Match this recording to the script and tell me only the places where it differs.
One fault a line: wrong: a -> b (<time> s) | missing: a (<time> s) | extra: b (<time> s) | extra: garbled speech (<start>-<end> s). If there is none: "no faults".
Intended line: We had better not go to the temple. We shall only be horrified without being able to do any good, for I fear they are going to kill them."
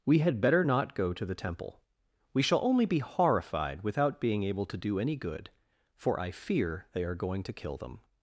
no faults